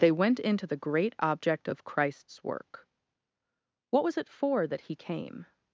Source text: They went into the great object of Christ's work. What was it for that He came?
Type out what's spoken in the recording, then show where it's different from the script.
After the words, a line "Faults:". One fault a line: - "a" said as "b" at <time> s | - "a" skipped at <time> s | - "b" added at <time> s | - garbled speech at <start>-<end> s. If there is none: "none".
They went into the great object of Christ's work. What was it for that He came?
Faults:
none